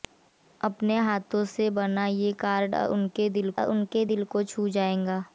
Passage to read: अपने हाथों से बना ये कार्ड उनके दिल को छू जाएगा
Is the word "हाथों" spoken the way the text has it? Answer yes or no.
yes